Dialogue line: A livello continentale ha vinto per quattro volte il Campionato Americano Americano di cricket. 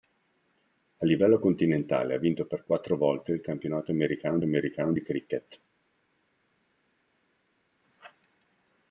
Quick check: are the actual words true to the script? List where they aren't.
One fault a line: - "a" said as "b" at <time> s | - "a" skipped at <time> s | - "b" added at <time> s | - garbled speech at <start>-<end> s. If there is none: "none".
none